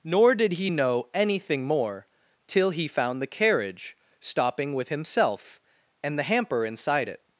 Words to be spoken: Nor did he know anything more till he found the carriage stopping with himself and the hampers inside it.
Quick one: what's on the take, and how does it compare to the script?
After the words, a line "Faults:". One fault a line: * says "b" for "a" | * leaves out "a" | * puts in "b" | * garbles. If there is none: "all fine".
Nor did he know anything more till he found the carriage stopping with himself and the hamper inside it.
Faults:
* says "hamper" for "hampers"